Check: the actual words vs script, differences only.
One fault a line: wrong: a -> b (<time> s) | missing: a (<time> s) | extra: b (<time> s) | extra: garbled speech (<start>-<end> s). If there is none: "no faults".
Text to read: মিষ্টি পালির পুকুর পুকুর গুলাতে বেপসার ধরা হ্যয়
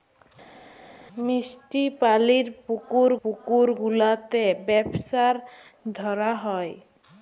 no faults